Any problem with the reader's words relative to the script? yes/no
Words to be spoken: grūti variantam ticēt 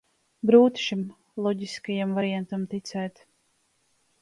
yes